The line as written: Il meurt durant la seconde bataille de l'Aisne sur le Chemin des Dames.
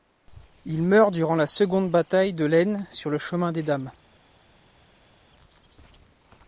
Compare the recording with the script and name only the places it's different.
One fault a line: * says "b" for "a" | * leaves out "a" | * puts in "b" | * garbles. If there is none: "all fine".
all fine